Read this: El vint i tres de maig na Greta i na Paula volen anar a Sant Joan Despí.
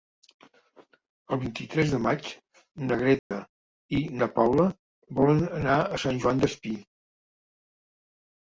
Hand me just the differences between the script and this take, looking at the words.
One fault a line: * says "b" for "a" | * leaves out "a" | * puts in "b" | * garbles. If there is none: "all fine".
all fine